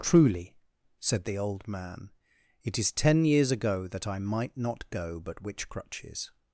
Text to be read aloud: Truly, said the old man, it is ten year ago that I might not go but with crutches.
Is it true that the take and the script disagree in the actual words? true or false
true